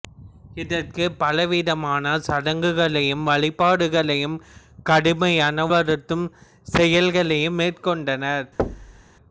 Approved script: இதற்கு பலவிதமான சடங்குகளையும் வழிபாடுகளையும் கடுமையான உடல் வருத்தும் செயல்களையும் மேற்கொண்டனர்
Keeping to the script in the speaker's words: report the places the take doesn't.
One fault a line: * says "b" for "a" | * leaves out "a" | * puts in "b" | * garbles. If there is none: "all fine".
* leaves out "உடல்"